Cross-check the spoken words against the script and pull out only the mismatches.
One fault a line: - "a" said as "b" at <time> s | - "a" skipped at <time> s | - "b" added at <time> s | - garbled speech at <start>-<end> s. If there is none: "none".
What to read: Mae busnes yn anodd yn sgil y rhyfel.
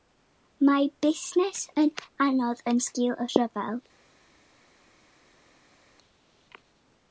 none